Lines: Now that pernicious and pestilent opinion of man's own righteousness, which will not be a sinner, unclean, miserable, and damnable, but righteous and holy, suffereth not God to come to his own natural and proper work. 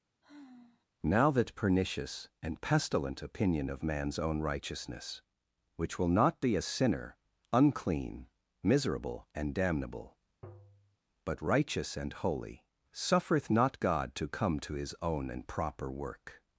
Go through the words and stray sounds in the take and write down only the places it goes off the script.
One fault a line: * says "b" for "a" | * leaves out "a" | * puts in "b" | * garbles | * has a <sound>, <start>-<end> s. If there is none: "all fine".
* has a sigh, 0.2-0.9 s
* has a tap, 10.4-11.0 s
* leaves out "natural"